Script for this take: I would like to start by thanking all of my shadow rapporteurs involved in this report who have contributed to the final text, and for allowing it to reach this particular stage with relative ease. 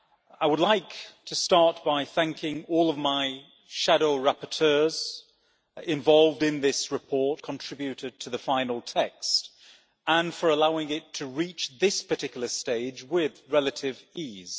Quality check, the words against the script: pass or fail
fail